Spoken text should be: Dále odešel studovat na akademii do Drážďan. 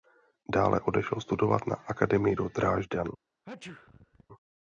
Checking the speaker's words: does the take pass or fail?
pass